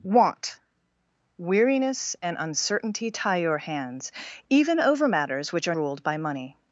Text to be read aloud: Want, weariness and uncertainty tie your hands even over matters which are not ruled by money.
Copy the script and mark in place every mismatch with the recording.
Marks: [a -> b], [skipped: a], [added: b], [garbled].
Want, weariness and uncertainty tie your hands even over matters which are [skipped: not] ruled by money.